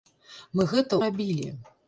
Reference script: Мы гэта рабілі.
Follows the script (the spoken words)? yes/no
yes